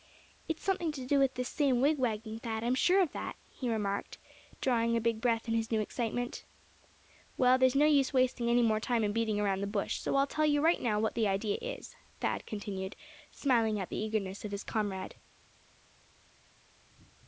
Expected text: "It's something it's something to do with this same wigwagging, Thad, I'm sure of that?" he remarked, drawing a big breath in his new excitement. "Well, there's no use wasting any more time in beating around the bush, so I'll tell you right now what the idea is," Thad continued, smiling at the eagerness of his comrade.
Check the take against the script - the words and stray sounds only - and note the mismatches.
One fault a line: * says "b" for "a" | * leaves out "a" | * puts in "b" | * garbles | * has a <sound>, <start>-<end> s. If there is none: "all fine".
* leaves out "it's something"